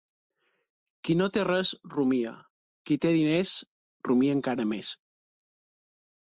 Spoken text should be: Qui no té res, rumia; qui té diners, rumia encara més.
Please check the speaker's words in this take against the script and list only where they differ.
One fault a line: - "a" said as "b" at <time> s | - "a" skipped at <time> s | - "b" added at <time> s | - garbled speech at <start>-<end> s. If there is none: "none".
none